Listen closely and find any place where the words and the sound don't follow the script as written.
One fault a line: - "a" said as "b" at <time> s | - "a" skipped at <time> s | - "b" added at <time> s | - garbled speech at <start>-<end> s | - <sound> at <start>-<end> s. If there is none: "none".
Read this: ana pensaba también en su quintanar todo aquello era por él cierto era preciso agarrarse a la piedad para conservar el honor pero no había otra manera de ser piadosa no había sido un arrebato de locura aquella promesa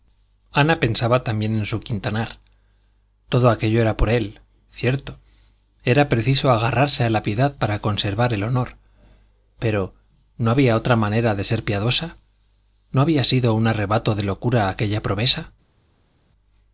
none